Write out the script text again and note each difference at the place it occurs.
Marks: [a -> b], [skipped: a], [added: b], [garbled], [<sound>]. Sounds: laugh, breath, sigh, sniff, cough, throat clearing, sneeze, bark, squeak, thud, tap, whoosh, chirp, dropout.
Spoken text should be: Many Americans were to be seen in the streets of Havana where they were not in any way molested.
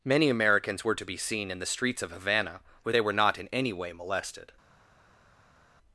Many Americans were to be seen in the streets of Havana where they were not in any way molested.